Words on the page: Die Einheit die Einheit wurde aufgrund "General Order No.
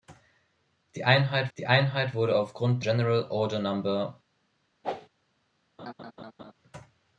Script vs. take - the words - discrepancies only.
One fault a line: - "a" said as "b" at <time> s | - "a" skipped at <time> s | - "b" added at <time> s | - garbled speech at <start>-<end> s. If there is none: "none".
none